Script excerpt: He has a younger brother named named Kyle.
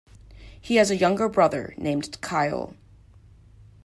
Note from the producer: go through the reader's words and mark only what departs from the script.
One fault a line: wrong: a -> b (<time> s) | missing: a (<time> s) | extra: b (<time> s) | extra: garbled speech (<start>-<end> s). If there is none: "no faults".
missing: named (2.2 s)